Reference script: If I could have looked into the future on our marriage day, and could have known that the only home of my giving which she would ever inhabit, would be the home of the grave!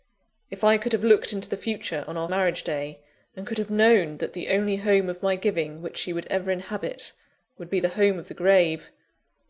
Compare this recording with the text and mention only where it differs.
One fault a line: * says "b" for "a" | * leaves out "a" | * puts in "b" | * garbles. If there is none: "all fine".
all fine